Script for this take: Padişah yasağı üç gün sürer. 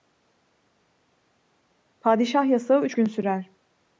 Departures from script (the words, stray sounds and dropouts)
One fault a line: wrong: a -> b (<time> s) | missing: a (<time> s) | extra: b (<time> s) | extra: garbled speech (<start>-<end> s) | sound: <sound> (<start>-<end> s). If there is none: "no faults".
no faults